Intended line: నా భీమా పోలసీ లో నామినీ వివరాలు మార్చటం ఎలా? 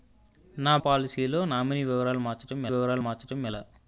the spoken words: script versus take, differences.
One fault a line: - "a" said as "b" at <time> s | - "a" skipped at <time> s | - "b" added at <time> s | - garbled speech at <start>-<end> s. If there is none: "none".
- "భీమా" skipped at 0.8 s
- "వివరాలు మార్చటం" added at 2.7 s